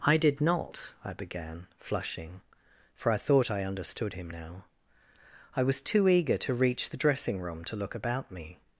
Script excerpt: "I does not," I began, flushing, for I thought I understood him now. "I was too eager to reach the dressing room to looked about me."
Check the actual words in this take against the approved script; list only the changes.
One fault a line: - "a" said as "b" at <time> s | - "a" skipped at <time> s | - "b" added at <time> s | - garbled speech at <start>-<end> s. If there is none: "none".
- "does" said as "did" at 0.2 s
- "looked" said as "look" at 7.8 s